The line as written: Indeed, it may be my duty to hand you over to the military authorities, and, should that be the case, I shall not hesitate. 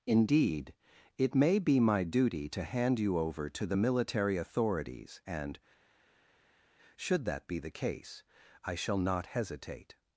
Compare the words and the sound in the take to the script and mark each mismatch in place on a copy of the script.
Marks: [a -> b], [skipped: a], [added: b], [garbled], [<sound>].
Indeed, it may be my duty to hand you over to the military authorities, and, should that be the case, I shall not hesitate.